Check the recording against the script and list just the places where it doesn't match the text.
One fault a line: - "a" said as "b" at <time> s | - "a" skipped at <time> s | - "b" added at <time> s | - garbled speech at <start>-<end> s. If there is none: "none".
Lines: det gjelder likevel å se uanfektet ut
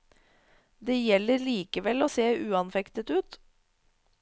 none